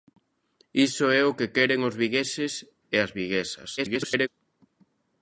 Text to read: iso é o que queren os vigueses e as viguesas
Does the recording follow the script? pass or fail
fail